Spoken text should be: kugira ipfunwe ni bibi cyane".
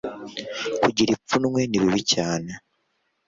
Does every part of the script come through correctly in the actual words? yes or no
yes